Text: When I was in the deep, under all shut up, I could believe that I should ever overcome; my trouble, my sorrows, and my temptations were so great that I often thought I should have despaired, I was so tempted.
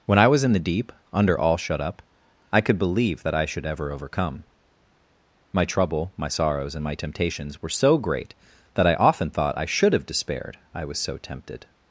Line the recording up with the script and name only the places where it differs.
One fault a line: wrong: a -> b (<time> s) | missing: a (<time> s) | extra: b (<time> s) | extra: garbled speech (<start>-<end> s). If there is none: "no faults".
no faults